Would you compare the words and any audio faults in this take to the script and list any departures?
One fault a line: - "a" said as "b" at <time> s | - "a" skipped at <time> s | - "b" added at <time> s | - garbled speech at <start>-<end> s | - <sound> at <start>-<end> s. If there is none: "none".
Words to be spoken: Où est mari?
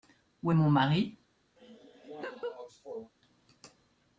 - "mon" added at 0.5 s
- laugh at 1.6-3.1 s